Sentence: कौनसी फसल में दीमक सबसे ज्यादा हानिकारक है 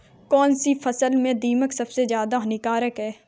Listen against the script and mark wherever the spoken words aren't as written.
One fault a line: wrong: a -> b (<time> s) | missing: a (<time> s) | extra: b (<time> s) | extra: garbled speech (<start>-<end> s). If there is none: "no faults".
no faults